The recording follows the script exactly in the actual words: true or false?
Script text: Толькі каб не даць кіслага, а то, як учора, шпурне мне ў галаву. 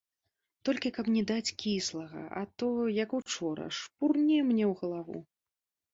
true